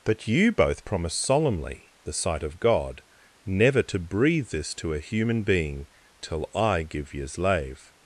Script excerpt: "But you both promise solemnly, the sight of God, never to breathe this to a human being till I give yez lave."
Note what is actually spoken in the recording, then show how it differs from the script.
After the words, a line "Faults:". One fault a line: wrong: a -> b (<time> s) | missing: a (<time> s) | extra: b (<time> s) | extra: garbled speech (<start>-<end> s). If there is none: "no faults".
"But you both promise solemnly, the sight of God, never to breathe this to a human being till I give yez lave."
Faults:
no faults